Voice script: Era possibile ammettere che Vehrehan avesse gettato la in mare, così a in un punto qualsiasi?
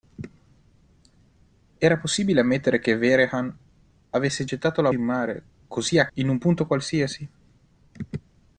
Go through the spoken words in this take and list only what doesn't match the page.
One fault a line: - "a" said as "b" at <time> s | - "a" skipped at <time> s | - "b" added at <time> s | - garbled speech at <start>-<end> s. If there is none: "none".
none